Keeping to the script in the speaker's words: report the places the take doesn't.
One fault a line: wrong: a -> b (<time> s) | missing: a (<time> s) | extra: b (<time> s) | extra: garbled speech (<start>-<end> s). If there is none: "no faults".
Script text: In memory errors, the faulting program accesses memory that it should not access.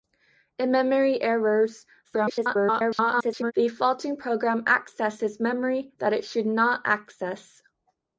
extra: garbled speech (2.0-3.5 s)